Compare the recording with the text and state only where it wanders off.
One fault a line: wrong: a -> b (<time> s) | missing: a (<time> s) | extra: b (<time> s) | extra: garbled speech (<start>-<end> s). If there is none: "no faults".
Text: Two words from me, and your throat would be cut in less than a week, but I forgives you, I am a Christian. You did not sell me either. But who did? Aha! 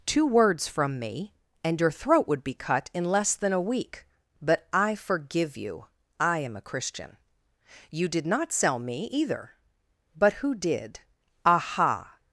wrong: forgives -> forgive (4.9 s)